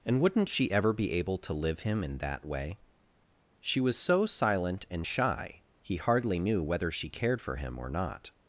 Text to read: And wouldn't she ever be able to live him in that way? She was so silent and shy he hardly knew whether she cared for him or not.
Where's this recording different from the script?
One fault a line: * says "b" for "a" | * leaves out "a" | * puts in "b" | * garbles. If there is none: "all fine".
all fine